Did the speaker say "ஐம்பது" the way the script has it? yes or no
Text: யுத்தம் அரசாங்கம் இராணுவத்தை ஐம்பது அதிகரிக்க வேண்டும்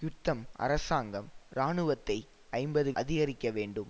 yes